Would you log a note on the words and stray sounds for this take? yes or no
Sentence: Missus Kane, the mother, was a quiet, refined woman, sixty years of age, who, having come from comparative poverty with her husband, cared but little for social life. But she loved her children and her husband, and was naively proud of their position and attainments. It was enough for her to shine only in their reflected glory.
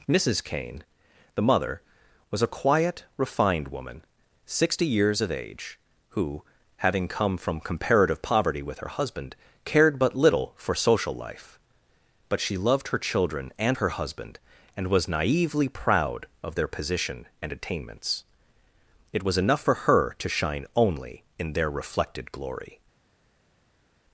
no